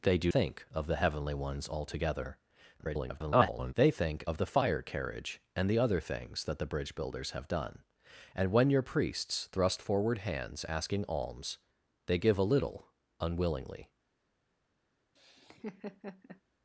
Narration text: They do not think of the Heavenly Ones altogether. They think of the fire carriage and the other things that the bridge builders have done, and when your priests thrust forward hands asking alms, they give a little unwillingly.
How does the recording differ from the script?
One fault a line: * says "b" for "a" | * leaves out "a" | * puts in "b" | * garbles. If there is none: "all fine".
* leaves out "not"
* garbles